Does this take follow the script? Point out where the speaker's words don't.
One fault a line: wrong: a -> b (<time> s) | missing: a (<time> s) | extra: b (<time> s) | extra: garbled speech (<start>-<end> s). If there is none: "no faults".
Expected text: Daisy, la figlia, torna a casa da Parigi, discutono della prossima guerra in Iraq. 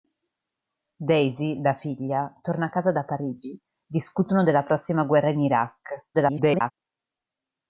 extra: garbled speech (6.1-6.7 s)